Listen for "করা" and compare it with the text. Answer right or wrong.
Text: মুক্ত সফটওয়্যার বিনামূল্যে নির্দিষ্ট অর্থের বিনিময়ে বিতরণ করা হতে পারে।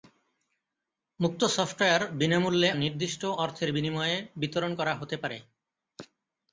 right